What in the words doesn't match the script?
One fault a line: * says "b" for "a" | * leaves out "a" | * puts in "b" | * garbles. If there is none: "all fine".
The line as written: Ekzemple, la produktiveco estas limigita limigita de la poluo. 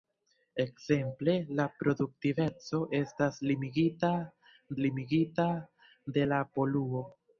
all fine